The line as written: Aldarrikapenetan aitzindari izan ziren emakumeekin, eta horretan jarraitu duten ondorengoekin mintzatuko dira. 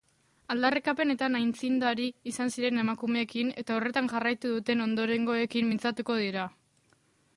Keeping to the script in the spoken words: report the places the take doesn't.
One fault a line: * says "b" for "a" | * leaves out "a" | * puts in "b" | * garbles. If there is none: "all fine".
all fine